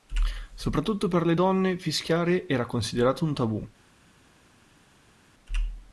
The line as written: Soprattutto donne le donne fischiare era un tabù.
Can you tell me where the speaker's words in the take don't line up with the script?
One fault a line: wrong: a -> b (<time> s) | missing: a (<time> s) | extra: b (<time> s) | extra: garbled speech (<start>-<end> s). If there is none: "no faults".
wrong: donne -> per (1.1 s)
extra: considerato (2.7 s)